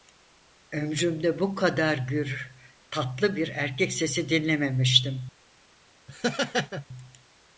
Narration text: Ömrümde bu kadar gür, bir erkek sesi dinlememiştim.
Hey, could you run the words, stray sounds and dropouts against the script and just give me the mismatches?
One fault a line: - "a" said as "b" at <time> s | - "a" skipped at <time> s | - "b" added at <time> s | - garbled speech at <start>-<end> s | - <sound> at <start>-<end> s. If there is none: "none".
- "tatlı" added at 2.9 s
- laugh at 6.1-6.9 s